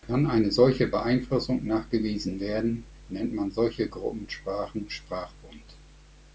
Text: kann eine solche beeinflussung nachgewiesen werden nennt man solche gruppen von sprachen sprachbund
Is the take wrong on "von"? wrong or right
wrong